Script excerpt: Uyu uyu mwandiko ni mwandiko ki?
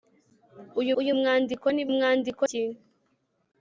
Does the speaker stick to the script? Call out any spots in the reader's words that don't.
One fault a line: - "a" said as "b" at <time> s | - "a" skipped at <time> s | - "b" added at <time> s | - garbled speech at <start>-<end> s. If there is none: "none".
none